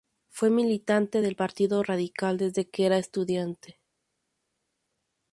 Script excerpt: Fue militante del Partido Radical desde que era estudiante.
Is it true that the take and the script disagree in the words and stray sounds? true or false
false